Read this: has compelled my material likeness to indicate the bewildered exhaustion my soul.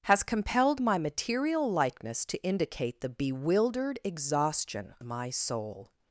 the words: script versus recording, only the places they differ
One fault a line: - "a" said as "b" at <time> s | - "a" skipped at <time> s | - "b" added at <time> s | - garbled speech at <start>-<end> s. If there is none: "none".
none